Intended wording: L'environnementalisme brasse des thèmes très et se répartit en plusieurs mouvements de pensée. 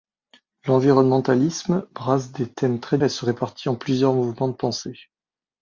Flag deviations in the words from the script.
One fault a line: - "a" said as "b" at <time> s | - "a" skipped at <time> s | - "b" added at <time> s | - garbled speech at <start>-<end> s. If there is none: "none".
none